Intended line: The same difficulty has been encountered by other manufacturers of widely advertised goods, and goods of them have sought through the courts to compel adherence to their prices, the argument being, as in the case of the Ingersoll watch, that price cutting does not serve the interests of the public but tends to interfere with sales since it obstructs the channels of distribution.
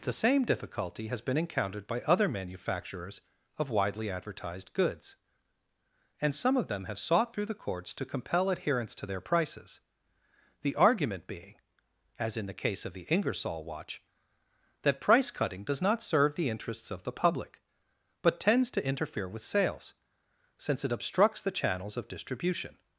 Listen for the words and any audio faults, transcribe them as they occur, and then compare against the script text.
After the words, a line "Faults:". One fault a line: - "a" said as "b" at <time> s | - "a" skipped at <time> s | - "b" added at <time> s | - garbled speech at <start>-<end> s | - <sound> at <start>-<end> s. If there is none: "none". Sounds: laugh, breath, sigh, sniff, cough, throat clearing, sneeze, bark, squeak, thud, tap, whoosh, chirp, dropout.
The same difficulty has been encountered by other manufacturers of widely advertised goods, and some of them have sought through the courts to compel adherence to their prices, the argument being, as in the case of the Ingersoll watch, that price cutting does not serve the interests of the public but tends to interfere with sales since it obstructs the channels of distribution.
Faults:
- "goods" said as "some" at 6.3 s